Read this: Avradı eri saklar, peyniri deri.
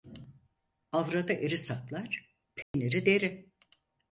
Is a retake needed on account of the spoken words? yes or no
no